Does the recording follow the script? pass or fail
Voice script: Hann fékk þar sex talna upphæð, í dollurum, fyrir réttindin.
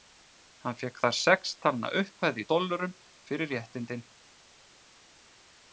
pass